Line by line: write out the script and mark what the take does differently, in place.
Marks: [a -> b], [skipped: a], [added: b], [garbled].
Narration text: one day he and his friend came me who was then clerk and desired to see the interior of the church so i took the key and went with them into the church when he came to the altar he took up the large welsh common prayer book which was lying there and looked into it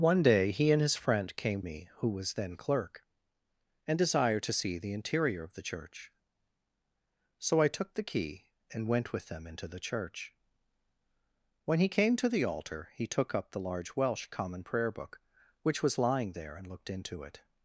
one day he and his friend came me who was then clerk and desired to see the interior of the church so i took the key and went with them into the church when he came to the altar he took up the large welsh common prayer book which was lying there and looked into it